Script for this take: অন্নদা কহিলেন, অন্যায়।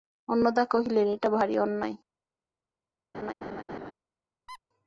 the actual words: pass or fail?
fail